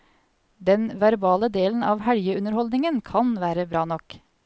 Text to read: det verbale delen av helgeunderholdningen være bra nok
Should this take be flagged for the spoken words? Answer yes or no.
yes